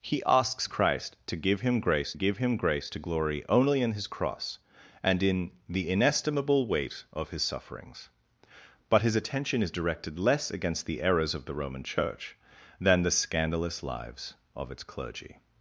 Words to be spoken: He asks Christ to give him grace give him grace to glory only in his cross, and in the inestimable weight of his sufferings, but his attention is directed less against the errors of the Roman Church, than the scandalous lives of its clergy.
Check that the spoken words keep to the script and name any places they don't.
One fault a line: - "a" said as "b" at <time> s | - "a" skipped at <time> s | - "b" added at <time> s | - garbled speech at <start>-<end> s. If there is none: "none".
none